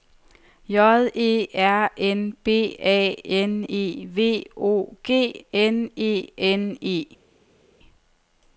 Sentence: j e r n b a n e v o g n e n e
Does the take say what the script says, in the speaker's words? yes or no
yes